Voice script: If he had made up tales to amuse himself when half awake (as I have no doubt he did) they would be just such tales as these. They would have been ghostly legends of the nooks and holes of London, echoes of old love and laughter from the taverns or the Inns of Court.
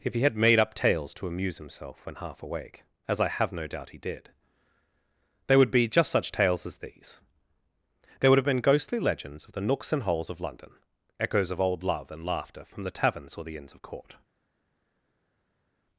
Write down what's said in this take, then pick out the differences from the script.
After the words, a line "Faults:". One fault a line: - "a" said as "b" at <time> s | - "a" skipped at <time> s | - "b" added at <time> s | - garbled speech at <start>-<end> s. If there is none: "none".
If he had made up tales to amuse himself when half awake (as I have no doubt he did) they would be just such tales as these. There would have been ghostly legends of the nooks and holes of London, echoes of old love and laughter from the taverns or the Inns of Court.
Faults:
- "They" said as "There" at 8.2 s